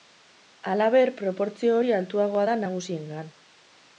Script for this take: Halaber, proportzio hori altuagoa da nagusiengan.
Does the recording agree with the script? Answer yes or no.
yes